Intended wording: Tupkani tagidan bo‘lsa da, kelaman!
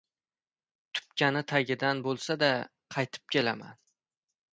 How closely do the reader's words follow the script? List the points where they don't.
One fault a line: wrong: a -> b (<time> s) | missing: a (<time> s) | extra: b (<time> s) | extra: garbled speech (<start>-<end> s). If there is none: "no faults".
extra: qaytib (3.0 s)